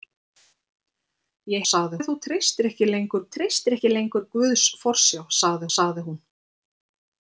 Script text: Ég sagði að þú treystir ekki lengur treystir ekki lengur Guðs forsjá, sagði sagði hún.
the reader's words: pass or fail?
pass